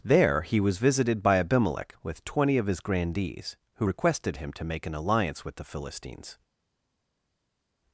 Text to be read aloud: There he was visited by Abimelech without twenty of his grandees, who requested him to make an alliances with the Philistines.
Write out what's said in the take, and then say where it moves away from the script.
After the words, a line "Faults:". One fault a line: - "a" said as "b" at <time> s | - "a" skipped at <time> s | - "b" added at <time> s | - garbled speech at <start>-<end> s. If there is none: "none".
There he was visited by Abimelech with twenty of his grandees, who requested him to make an alliance with the Philistines.
Faults:
- "without" said as "with" at 2.0 s
- "alliances" said as "alliance" at 4.9 s